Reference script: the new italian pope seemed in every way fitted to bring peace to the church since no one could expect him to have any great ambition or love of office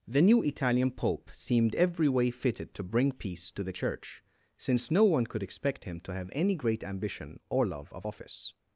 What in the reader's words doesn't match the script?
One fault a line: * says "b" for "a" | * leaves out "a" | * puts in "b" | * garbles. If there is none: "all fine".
* leaves out "in"